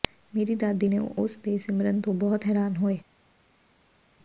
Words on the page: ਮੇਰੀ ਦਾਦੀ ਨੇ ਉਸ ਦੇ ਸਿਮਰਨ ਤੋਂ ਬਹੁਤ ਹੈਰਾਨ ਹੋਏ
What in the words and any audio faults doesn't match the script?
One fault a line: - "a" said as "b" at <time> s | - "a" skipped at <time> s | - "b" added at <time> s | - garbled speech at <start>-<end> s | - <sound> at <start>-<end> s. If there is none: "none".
none